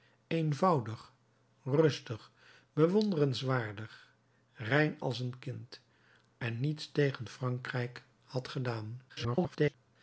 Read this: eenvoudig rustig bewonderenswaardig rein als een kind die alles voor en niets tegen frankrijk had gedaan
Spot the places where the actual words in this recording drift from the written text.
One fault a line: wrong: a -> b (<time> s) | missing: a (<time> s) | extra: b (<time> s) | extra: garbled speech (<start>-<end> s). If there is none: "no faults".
missing: die alles voor (5.8 s)
extra: garbled speech (9.1-9.7 s)